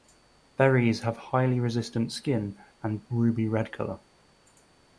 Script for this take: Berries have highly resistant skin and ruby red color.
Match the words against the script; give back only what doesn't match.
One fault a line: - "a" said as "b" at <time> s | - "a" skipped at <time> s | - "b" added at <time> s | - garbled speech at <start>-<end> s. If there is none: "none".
none